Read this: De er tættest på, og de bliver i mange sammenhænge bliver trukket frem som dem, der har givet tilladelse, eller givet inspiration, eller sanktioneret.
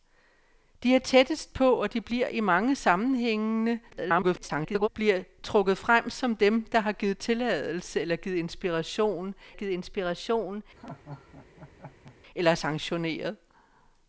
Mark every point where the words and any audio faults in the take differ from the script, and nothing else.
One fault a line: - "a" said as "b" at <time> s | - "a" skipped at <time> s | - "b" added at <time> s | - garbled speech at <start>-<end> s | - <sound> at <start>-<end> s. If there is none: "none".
- garbled speech at 3.9-4.9 s
- "givet inspiration" added at 9.5 s
- laugh at 10.8-12.2 s